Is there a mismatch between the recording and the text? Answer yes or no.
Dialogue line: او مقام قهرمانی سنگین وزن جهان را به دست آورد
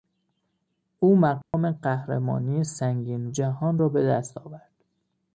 yes